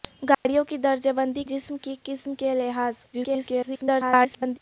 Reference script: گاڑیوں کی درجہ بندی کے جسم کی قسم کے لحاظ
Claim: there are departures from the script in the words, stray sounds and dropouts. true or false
true